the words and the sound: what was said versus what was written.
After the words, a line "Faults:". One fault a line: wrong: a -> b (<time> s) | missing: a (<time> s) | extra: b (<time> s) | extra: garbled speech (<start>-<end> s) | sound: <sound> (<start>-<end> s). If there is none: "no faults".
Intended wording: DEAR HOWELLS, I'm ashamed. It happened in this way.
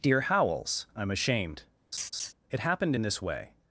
DEAR HOWELLS, I'm ashamed. It happened in this way.
Faults:
sound: laugh (1.9-2.3 s)